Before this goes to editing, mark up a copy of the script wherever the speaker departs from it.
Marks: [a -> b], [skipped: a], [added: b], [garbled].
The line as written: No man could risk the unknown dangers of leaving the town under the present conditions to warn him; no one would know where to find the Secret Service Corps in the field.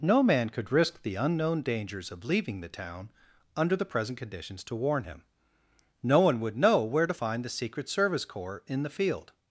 No man could risk the unknown dangers of leaving the town under the present conditions to warn him; no one would know where to find the Secret Service Corps in the field.